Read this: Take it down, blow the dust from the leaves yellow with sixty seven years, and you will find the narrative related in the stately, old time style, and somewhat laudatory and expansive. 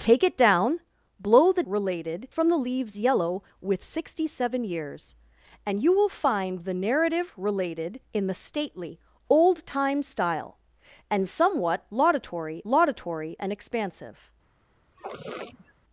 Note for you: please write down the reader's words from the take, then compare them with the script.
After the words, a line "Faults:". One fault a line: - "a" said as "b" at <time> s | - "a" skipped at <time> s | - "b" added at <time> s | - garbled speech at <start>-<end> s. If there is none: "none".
Take it down, blow the related from the leaves yellow with sixty seven years, and you will find the narrative related in the stately, old time style, and somewhat laudatory laudatory and expansive.
Faults:
- "dust" said as "related" at 1.6 s
- "laudatory" added at 12.7 s